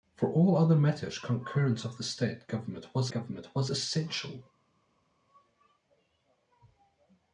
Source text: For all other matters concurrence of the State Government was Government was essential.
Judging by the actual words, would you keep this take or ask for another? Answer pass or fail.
pass